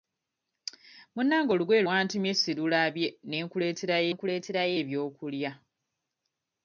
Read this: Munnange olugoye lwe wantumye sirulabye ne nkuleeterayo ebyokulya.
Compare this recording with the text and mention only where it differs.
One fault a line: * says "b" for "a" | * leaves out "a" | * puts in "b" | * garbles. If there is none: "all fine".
* leaves out "lwe"
* puts in "nkuleeterayo"